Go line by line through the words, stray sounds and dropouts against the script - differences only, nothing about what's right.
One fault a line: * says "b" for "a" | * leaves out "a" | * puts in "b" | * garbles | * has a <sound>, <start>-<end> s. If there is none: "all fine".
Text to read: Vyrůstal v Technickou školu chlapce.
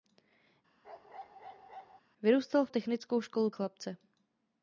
* has a bark, 0.8-2.0 s